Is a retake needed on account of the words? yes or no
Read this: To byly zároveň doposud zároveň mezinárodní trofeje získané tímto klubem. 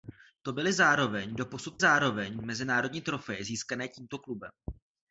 no